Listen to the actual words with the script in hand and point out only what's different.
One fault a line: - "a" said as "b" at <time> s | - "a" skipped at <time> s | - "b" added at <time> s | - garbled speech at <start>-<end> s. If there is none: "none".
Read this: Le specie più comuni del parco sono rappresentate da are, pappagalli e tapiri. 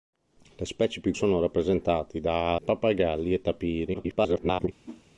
- "comuni del parco" skipped at 1.1 s
- "are" skipped at 2.6 s
- garbled speech at 3.9-4.7 s